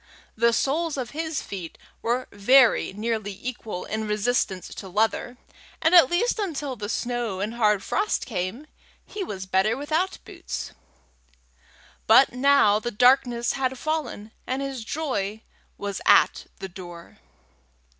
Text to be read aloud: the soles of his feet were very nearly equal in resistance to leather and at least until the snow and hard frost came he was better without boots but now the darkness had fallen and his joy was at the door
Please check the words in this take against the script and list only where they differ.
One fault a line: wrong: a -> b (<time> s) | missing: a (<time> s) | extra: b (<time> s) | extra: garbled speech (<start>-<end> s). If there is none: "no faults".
no faults